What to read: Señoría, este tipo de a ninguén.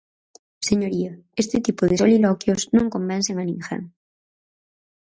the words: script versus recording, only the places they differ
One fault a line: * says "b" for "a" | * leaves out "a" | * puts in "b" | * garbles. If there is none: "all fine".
* puts in "soliloquios non convencen"